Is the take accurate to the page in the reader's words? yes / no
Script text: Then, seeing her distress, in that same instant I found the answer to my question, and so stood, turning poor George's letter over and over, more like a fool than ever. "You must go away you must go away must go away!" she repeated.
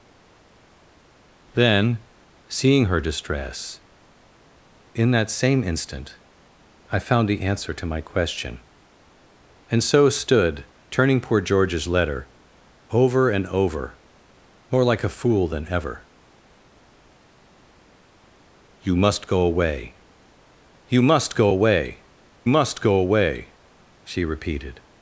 yes